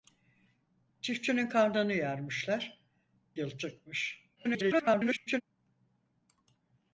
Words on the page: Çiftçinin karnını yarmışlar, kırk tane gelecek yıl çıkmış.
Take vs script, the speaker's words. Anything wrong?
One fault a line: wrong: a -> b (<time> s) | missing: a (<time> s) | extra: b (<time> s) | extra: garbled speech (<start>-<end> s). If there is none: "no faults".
missing: kırk tane gelecek (2.8 s)
extra: garbled speech (4.4-5.4 s)